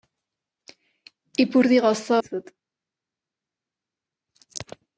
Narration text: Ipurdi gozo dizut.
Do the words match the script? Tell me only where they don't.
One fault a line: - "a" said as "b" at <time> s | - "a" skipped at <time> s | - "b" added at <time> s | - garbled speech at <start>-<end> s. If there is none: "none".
none